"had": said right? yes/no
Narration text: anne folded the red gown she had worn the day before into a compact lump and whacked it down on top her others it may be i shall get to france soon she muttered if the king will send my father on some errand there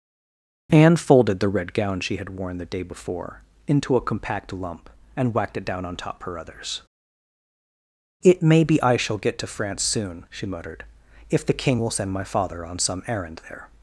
yes